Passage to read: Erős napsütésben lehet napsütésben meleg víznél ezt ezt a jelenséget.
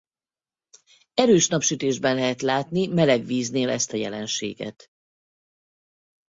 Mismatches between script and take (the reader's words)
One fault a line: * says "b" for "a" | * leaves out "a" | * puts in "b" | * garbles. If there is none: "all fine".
* says "látni" for "napsütésben"
* leaves out "ezt"